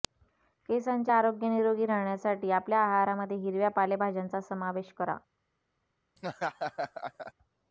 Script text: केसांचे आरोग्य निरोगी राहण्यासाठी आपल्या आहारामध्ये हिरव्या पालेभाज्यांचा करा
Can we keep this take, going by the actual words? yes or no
no